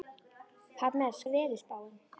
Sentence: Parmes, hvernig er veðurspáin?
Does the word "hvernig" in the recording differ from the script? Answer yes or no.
yes